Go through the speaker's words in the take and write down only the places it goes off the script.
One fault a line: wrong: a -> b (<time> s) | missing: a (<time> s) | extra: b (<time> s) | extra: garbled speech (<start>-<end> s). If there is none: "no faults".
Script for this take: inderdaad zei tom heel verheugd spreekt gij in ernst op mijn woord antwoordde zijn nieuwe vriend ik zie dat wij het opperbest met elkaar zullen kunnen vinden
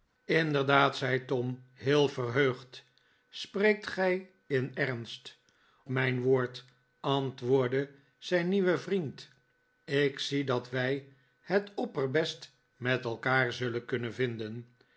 missing: op (5.4 s)